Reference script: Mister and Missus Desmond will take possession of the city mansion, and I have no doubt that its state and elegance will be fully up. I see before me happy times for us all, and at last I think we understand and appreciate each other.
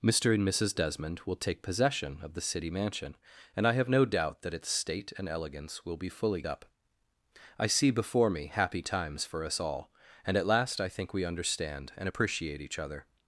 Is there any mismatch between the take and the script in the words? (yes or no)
no